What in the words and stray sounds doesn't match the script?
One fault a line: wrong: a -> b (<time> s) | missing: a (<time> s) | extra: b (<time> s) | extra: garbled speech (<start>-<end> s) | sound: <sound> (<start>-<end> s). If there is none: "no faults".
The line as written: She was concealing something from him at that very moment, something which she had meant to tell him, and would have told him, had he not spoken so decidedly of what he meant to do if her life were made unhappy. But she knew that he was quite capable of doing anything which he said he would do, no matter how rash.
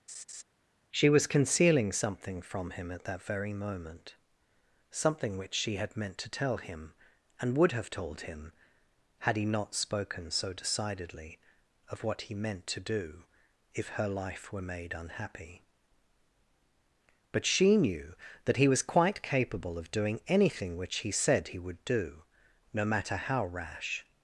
sound: laugh (0.1-0.4 s)